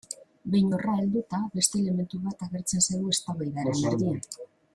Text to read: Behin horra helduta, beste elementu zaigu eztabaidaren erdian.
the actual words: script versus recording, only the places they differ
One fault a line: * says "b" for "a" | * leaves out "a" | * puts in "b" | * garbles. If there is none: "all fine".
* puts in "bat agertzen"